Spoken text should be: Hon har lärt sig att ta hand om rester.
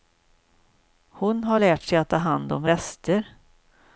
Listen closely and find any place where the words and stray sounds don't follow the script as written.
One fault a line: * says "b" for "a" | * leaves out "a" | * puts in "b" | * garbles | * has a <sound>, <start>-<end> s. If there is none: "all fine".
all fine